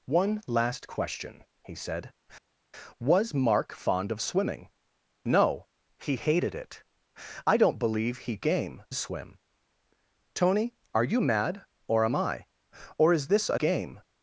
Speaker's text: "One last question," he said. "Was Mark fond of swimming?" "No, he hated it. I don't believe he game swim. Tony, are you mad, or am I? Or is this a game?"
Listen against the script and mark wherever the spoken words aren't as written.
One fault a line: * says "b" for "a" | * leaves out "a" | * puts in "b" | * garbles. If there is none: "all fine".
all fine